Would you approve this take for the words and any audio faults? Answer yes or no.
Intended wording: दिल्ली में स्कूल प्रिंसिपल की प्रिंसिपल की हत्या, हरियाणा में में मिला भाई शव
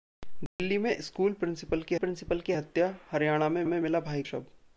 no